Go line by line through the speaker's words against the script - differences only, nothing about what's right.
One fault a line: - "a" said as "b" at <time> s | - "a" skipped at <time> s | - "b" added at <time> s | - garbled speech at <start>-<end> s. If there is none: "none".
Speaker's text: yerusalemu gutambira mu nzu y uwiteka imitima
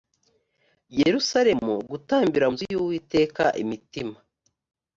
- "mu" skipped at 2.5 s